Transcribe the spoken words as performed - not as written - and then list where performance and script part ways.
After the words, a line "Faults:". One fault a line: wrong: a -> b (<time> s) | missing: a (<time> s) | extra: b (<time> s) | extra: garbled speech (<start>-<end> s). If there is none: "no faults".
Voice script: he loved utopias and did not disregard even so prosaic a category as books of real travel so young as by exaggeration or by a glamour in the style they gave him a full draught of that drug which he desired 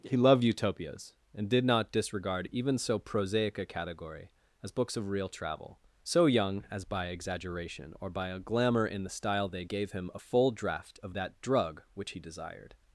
he loved utopias and did not disregard even so prosaic a category as books of real travel so young as by exaggeration or by a glamour in the style they gave him a full draught of that drug which he desired
Faults:
no faults